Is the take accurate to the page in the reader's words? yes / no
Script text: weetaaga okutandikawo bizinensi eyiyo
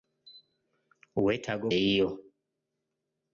no